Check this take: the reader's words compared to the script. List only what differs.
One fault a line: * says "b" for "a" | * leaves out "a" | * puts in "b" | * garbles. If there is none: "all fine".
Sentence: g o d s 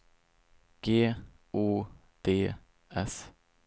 all fine